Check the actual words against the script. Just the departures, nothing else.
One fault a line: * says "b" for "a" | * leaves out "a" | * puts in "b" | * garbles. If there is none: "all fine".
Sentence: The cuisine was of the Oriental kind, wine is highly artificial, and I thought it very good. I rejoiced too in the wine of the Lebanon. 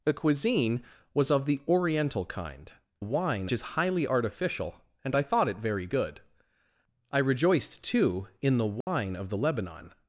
all fine